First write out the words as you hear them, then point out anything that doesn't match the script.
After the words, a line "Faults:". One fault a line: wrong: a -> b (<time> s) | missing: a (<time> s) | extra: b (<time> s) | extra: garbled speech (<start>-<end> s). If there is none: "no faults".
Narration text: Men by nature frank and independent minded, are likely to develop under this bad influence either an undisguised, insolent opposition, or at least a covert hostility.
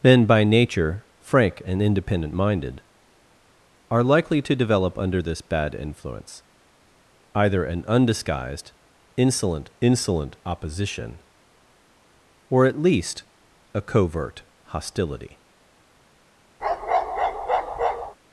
Men by nature frank and independent minded, are likely to develop under this bad influence either an undisguised, insolent insolent opposition, or at least a covert hostility.
Faults:
extra: insolent (9.8 s)